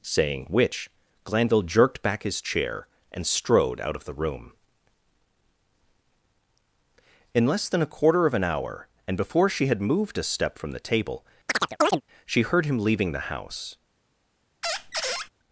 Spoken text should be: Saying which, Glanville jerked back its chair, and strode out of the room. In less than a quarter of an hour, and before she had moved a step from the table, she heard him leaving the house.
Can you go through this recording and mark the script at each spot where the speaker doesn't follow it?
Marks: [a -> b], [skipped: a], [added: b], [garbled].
Saying which, Glanville jerked back [its -> his] chair, and strode out of the room. In less than a quarter of an hour, and before she had moved a step from the table, she heard him leaving the house.